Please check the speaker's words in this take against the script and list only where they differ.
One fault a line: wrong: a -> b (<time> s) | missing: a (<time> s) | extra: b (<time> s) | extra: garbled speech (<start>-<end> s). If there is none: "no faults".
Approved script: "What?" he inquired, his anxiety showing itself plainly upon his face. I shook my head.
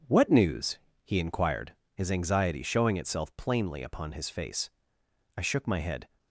extra: news (0.3 s)